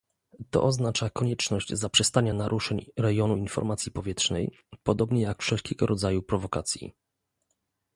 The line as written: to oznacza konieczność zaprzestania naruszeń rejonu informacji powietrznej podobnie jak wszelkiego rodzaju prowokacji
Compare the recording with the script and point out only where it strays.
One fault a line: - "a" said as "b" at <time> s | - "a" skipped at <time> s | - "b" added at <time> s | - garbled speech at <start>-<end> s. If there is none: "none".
none